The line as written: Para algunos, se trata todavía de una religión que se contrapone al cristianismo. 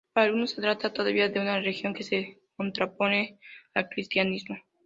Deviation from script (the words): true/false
false